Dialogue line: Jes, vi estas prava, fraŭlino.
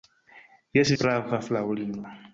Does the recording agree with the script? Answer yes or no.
no